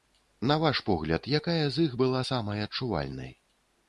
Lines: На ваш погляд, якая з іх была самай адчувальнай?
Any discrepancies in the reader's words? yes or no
no